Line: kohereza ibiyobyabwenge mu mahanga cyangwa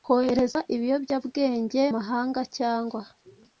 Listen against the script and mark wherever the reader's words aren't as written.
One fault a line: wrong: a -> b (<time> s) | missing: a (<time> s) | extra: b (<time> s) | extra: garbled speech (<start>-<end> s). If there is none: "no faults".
missing: mu (1.8 s)